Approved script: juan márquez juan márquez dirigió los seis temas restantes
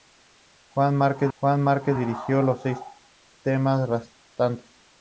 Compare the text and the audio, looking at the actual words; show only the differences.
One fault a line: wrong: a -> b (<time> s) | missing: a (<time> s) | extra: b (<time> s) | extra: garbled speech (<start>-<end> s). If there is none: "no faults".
no faults